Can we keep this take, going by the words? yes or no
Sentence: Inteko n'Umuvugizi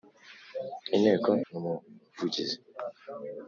yes